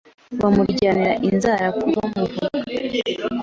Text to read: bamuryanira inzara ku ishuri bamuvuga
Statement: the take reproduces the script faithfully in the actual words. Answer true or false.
false